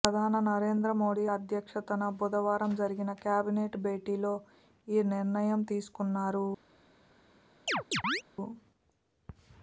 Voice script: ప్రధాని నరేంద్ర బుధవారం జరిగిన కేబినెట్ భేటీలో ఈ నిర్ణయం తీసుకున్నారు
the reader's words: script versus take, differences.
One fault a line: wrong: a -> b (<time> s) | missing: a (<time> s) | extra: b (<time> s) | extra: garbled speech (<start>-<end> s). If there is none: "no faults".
extra: మోదీ అధ్యక్షతన (1.0 s)